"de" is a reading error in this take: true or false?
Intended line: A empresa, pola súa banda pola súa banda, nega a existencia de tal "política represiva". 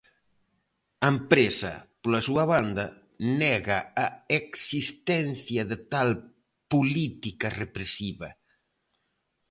false